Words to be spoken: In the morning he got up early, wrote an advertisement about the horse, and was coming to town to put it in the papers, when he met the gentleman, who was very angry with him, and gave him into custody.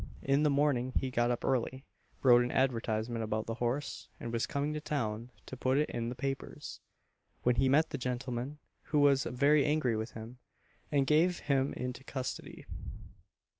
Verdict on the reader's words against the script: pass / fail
pass